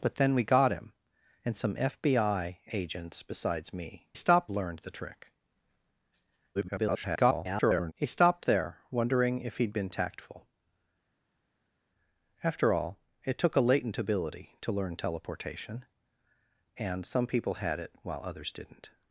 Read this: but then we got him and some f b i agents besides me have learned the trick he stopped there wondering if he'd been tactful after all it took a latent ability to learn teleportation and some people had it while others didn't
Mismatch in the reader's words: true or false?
true